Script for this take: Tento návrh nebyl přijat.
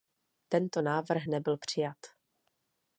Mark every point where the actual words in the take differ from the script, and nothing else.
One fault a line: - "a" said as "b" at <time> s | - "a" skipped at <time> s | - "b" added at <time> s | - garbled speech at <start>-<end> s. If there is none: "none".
none